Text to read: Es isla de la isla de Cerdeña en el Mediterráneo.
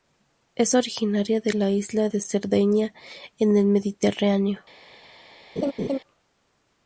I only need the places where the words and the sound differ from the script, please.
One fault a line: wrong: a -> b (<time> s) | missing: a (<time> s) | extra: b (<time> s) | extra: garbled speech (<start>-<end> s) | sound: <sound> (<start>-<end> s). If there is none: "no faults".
wrong: isla -> originaria (0.7 s)
sound: laugh (5.6-6.0 s)